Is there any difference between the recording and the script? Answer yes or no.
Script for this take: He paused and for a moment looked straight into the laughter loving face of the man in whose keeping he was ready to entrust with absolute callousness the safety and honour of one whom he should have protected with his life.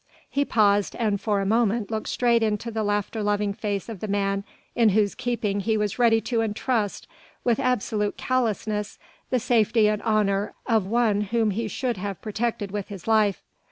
no